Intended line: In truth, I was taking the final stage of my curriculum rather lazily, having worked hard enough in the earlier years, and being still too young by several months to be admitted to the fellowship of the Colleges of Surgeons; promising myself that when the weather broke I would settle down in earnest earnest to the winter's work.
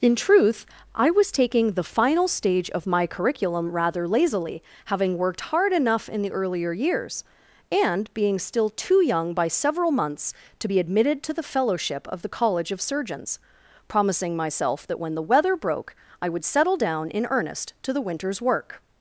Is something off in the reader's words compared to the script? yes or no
yes